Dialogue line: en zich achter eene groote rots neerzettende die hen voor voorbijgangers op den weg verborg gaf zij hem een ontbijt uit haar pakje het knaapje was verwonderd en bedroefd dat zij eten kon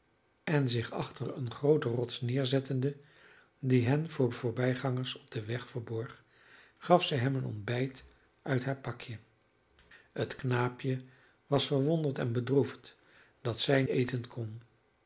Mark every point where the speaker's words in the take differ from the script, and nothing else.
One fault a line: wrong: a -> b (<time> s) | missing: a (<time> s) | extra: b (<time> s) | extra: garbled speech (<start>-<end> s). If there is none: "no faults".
no faults